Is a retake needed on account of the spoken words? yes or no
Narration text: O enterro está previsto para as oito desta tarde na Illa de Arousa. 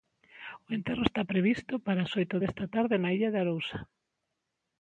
no